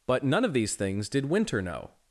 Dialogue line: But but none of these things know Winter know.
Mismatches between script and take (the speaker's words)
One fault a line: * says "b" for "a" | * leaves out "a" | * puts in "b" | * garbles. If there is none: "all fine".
* leaves out "but"
* says "did" for "know"